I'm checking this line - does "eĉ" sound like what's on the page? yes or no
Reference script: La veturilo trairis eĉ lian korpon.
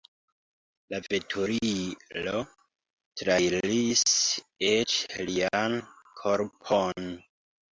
yes